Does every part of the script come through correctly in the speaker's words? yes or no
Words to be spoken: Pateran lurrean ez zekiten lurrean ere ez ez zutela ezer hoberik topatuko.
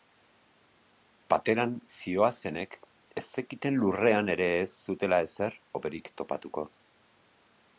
no